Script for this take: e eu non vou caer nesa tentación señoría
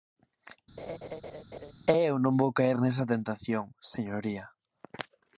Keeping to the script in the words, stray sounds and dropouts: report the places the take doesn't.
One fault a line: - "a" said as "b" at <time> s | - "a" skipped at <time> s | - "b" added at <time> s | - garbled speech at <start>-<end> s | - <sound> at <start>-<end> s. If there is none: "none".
- laugh at 0.8-1.7 s